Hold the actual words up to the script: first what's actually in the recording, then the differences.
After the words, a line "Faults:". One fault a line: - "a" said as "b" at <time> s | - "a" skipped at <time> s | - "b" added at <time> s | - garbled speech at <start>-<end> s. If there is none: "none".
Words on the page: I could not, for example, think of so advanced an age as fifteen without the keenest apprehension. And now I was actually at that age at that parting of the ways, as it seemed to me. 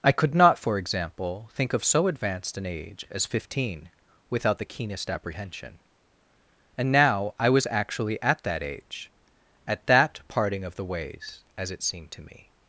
I could not, for example, think of so advanced an age as fifteen without the keenest apprehension. And now I was actually at that age at that parting of the ways, as it seemed to me.
Faults:
none